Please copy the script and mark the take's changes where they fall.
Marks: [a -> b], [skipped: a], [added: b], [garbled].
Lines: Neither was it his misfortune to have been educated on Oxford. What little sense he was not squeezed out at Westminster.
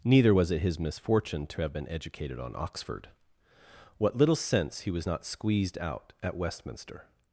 Neither was it his misfortune to have been educated on Oxford. What little sense he was not squeezed out at Westminster.